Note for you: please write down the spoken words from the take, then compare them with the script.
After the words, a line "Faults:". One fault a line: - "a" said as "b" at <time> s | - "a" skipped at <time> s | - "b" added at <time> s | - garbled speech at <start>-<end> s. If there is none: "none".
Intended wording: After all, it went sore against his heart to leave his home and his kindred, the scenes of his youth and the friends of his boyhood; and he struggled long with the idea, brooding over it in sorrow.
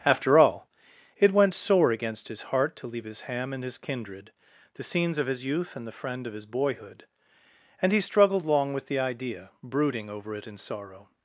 After all, it went sore against his heart to leave his ham and his kindred, the scenes of his youth and the friend of his boyhood; and he struggled long with the idea, brooding over it in sorrow.
Faults:
- "home" said as "ham" at 3.2 s
- "friends" said as "friend" at 5.9 s